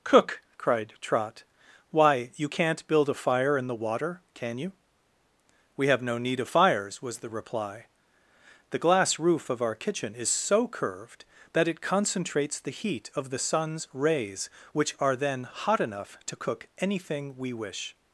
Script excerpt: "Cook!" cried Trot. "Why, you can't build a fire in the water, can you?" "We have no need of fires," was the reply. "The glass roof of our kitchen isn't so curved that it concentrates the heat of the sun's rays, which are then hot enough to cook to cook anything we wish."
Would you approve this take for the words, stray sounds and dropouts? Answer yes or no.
no